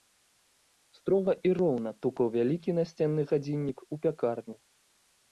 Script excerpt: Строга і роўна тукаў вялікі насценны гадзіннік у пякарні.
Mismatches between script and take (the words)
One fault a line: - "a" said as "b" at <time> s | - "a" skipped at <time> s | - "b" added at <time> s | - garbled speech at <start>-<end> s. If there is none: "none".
none